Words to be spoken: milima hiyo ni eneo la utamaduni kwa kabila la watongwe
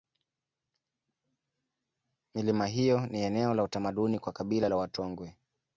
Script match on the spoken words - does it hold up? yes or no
yes